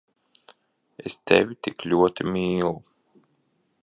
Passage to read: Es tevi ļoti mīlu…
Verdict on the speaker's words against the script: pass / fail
fail